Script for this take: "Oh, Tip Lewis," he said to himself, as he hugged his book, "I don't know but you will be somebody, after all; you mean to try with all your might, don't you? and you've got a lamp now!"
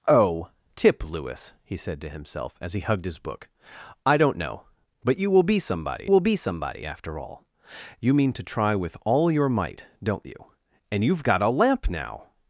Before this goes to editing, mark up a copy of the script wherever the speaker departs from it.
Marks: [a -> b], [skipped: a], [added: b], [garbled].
"Oh, Tip Lewis," he said to himself, as he hugged his book, "I don't know but you will be somebody, [added: will be somebody] after all; you mean to try with all your might, don't you? and you've got a lamp now!"